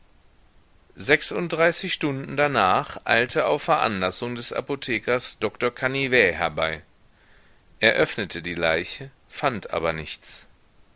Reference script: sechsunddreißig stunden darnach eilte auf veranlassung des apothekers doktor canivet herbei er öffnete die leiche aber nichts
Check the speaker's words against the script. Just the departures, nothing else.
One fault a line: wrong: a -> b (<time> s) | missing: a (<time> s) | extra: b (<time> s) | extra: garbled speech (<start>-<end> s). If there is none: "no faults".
extra: fand (9.3 s)